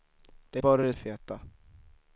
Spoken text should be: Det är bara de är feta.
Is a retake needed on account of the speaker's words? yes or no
no